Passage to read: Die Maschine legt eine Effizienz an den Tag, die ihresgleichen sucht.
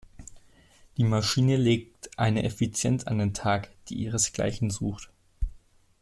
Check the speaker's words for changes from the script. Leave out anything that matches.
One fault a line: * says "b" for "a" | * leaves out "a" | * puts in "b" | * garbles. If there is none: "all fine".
all fine